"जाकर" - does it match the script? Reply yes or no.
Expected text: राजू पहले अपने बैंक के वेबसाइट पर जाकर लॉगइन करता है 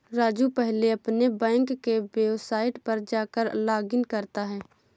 yes